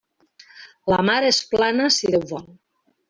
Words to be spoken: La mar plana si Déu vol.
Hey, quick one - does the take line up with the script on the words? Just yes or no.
no